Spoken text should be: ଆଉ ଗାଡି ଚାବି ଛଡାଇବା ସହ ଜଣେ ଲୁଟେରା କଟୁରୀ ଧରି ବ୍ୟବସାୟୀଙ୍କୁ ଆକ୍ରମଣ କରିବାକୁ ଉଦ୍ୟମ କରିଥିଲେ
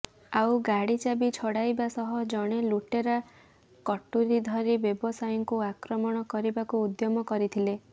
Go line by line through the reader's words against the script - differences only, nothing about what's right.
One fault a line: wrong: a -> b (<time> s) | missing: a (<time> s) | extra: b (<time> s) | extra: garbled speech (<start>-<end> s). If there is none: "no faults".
no faults